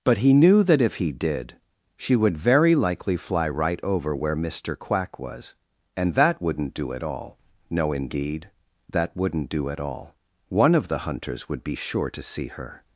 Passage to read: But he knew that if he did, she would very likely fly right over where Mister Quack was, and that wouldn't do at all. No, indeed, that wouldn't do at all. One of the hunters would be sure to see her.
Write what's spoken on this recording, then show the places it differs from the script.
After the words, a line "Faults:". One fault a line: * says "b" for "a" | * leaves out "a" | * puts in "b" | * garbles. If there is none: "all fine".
But he knew that if he did, she would very likely fly right over where Mister Quack was, and that wouldn't do at all. No, indeed, that wouldn't do at all. One of the hunters would be sure to see her.
Faults:
all fine